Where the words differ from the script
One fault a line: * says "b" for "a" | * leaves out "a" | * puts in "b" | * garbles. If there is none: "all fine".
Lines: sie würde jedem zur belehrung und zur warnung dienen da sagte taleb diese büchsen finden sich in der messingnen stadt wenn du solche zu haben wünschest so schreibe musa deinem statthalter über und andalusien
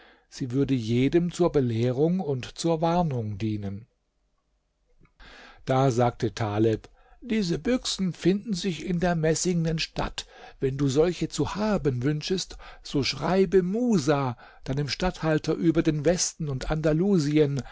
* puts in "den westen"